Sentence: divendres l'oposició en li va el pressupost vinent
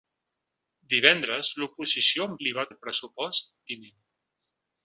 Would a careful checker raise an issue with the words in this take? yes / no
no